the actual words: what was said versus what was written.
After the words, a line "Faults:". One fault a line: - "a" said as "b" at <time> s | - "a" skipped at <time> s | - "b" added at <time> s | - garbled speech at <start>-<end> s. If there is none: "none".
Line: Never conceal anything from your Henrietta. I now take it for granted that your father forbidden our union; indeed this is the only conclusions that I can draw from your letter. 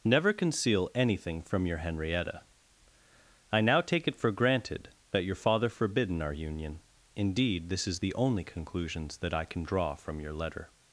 Never conceal anything from your Henrietta. I now take it for granted that your father forbidden our union; indeed this is the only conclusions that I can draw from your letter.
Faults:
none